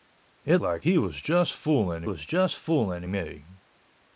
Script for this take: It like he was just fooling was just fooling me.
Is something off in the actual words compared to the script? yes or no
no